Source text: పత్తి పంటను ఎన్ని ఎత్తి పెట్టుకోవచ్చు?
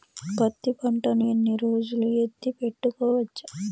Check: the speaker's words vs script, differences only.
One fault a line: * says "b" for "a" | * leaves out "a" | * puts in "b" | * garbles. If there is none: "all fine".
* puts in "రోజులు"